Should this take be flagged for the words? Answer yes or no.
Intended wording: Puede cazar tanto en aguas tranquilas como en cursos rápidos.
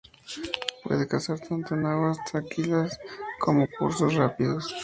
no